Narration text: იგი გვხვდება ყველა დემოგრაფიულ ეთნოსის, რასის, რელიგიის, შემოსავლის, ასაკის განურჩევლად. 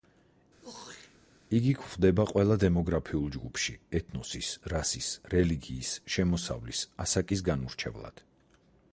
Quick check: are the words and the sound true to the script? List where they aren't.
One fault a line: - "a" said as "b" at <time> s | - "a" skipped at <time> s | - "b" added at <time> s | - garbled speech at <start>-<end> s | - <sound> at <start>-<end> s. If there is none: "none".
- throat clearing at 0.6-1.2 s
- "ჯგუფში" added at 3.4 s